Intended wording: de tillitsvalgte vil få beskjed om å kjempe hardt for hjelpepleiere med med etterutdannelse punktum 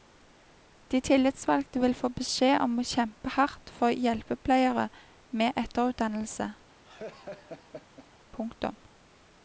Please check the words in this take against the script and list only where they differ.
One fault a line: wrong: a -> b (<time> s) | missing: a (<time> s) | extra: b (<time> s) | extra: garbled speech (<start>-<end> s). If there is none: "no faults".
missing: med (5.6 s)